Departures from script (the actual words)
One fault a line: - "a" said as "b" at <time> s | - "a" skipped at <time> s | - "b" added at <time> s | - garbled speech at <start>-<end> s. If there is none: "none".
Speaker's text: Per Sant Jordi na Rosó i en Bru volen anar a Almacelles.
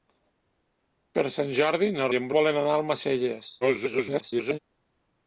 - "Rosó" skipped at 2.1 s
- "Bru" skipped at 2.3 s
- garbled speech at 3.6-4.6 s